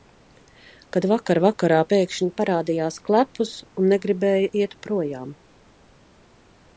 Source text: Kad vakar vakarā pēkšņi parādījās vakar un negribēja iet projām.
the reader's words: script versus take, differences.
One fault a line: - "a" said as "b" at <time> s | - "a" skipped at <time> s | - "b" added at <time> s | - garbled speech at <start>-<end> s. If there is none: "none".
- "vakar" said as "klepus" at 3.1 s